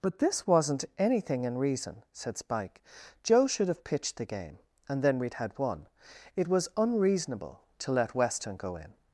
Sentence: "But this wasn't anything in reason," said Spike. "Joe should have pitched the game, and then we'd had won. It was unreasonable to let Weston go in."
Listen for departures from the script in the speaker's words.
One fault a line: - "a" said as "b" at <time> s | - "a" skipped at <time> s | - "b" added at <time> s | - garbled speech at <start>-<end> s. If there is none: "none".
none